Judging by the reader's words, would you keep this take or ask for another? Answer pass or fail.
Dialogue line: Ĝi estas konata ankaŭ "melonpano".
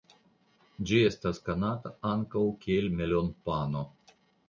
fail